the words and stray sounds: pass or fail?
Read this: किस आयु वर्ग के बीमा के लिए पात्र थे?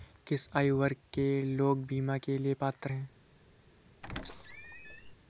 fail